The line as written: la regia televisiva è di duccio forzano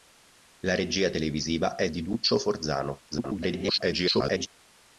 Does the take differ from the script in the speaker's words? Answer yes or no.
yes